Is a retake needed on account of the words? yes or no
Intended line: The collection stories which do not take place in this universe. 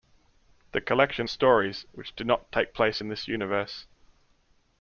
no